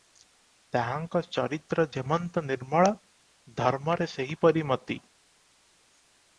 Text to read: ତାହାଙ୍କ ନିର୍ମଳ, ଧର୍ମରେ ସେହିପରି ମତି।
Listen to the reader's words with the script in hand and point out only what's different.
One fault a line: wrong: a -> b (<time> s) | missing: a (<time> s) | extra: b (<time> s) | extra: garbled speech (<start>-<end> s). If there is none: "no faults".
extra: ଚରିତ୍ର ଯେମନ୍ତ (1.3 s)